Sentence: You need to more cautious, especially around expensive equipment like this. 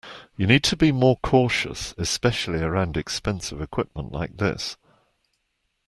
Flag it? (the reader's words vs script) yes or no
yes